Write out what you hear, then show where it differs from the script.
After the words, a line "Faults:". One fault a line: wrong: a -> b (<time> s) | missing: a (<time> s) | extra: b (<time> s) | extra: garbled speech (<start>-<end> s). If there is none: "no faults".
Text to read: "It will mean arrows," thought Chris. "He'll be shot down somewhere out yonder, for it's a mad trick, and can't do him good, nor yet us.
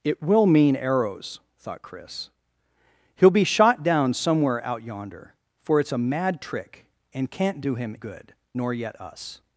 "It will mean arrows," thought Chris. "He'll be shot down somewhere out yonder, for it's a mad trick, and can't do him good, nor yet us.
Faults:
no faults